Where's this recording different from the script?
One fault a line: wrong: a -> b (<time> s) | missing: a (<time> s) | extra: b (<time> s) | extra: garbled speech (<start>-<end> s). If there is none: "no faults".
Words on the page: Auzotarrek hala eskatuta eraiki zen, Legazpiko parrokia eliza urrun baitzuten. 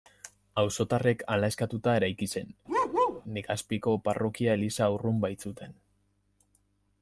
no faults